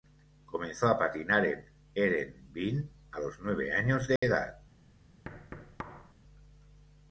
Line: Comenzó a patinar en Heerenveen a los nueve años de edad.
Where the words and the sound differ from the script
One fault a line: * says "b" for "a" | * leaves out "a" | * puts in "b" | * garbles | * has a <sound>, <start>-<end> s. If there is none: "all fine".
* has a dropout, 4.2-4.2 s
* has a thud, 5.2-6.1 s